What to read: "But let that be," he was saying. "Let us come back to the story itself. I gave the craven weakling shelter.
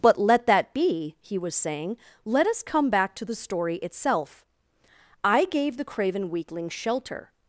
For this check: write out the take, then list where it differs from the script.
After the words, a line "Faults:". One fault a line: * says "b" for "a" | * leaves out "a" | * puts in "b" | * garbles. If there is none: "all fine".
"But let that be," he was saying. "Let us come back to the story itself. I gave the craven weakling shelter.
Faults:
all fine